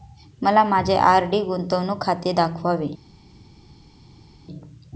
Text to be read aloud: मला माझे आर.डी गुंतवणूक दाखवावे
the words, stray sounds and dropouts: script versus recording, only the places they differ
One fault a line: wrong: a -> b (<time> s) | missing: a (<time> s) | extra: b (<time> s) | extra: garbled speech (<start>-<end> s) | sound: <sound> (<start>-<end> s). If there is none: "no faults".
extra: खाते (2.0 s)